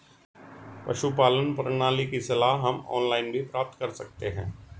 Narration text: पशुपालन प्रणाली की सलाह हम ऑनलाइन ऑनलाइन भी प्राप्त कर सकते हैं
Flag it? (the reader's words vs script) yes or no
yes